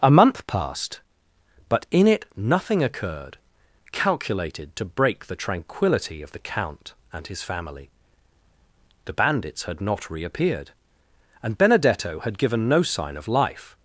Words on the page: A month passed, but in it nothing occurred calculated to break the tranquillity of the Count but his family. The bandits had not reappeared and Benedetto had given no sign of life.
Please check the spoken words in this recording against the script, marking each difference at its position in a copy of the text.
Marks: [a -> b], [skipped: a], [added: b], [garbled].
A month passed, but in it nothing occurred calculated to break the tranquillity of the Count [but -> and] his family. The bandits had not reappeared and Benedetto had given no sign of life.